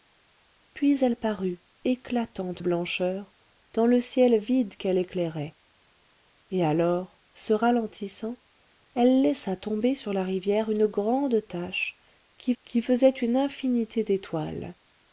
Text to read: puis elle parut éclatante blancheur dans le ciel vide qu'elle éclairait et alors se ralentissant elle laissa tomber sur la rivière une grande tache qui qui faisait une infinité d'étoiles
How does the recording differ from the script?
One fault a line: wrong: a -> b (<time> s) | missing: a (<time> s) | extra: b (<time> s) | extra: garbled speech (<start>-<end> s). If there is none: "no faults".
no faults